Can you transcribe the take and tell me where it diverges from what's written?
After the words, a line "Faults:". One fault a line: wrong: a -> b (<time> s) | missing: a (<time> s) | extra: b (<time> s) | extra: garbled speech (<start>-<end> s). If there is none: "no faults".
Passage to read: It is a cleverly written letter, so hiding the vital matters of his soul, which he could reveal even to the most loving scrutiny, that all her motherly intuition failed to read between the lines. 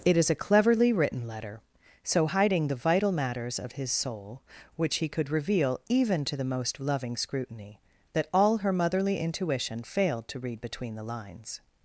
It is a cleverly written letter, so hiding the vital matters of his soul, which he could reveal even to the most loving scrutiny, that all her motherly intuition failed to read between the lines.
Faults:
no faults